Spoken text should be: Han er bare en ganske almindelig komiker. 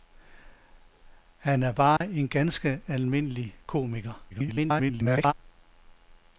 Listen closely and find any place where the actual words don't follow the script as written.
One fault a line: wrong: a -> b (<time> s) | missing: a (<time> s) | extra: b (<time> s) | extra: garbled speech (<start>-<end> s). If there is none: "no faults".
extra: garbled speech (4.3-5.3 s)